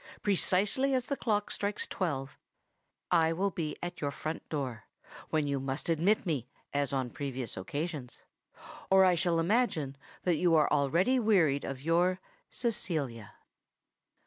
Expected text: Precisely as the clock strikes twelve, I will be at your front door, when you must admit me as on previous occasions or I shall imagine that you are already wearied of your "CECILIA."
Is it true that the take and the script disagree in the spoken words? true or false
false